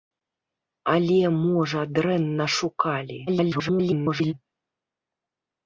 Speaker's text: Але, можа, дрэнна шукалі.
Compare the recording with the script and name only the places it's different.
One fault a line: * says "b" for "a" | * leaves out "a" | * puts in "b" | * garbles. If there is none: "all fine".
* garbles